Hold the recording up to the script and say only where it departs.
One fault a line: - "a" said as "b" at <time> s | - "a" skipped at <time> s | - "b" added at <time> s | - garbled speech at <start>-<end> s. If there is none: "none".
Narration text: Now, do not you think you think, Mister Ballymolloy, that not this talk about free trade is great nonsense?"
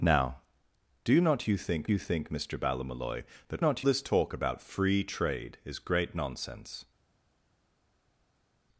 none